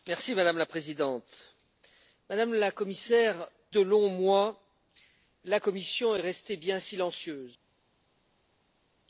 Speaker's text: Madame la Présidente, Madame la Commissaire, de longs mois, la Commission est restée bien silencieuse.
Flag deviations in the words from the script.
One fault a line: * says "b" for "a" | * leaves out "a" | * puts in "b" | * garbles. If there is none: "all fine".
all fine